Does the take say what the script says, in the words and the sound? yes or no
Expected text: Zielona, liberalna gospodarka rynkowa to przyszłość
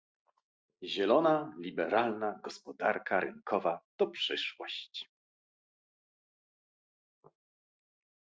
yes